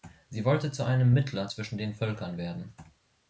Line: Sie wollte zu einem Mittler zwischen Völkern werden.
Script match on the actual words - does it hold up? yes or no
no